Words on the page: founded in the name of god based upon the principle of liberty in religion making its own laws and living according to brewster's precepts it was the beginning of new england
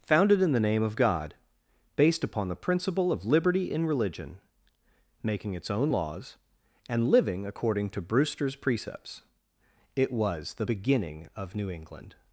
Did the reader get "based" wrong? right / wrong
right